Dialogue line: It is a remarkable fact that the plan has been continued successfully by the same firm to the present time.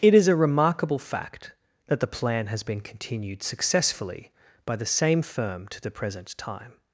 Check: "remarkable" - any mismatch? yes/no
no